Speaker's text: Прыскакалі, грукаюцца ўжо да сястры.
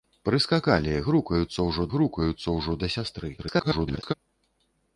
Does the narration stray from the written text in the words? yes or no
yes